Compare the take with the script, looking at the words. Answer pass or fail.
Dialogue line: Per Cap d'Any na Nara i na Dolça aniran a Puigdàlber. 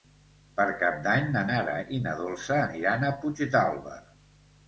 pass